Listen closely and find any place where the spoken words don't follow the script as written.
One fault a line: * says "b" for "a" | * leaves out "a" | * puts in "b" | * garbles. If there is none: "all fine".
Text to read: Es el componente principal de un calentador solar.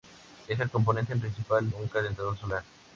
* leaves out "de"